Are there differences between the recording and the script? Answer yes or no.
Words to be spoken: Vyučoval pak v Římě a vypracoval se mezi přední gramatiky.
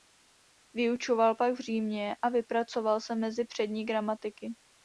no